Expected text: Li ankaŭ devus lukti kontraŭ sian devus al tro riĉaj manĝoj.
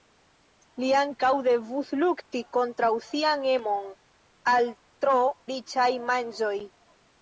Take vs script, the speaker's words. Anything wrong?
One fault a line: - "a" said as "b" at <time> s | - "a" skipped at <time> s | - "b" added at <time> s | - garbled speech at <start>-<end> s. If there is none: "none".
- "devus" said as "emon" at 3.5 s